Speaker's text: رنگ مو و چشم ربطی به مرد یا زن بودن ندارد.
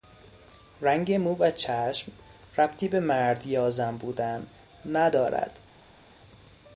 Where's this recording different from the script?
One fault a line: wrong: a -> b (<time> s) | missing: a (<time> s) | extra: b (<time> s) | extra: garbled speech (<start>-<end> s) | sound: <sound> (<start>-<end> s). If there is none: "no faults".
no faults